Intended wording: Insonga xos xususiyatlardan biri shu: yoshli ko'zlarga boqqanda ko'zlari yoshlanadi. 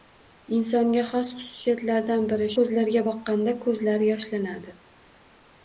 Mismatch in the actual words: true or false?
true